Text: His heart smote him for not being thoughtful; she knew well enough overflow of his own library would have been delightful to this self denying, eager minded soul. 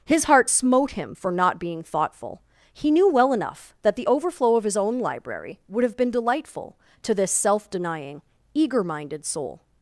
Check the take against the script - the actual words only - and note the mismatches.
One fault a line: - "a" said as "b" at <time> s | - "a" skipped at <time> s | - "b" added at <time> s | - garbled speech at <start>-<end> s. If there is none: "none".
- "she" said as "he" at 2.7 s
- "that the" added at 3.8 s